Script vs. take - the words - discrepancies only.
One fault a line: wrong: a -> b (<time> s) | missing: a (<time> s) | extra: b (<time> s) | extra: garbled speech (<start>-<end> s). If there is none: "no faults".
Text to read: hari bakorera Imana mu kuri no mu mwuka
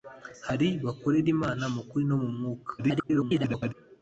extra: garbled speech (2.8-3.7 s)